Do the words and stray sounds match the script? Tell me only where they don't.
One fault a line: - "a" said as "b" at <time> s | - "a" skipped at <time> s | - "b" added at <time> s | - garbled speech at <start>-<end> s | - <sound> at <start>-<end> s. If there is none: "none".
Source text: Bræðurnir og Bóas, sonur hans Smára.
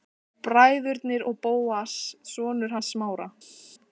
none